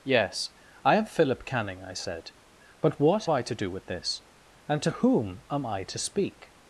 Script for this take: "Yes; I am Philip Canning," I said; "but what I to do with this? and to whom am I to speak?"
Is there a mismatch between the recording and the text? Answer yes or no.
no